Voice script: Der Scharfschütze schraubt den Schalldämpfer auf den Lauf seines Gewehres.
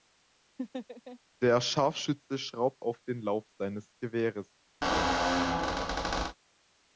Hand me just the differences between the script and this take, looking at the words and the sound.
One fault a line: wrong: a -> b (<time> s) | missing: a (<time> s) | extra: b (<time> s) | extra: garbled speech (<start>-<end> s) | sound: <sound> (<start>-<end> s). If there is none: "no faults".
sound: laugh (0.6-1.2 s)
missing: den Schalldämpfer (2.8 s)
sound: squeak (4.8-6.4 s)